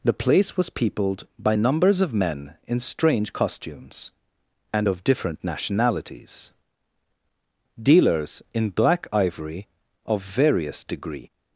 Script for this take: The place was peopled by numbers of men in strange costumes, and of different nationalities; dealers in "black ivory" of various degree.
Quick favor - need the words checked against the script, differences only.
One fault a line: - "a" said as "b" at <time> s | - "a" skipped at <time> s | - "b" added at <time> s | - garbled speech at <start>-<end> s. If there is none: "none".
none